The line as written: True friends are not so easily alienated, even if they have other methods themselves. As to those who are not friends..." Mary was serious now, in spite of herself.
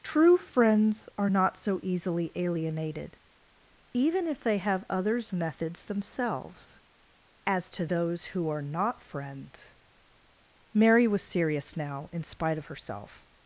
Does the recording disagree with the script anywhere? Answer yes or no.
yes